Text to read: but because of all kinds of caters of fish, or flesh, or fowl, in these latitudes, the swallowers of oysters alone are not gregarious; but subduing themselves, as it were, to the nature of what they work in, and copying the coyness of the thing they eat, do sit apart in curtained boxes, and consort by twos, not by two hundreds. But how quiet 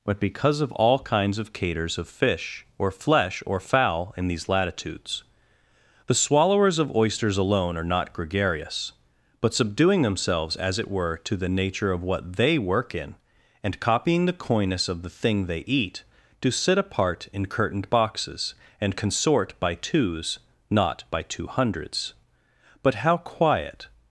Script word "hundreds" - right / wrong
right